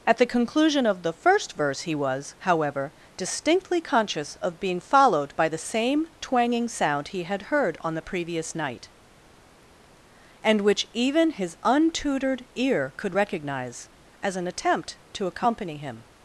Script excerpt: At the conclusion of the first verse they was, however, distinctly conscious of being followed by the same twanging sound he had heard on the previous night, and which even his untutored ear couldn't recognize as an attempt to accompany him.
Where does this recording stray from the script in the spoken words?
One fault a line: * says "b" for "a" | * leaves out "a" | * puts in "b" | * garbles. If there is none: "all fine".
* says "he" for "they"
* says "could" for "couldn't"